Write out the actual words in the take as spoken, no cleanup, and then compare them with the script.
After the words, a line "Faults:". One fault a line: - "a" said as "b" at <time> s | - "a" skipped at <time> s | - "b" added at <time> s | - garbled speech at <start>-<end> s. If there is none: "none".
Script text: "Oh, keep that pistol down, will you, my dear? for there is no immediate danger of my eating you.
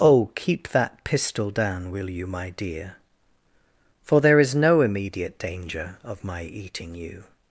"Oh, keep that pistol down, will you, my dear? for there is no immediate danger of my eating you.
Faults:
none